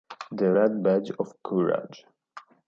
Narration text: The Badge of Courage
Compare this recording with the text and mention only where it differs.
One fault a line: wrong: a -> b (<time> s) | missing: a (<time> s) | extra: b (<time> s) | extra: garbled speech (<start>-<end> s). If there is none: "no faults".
extra: Red (0.5 s)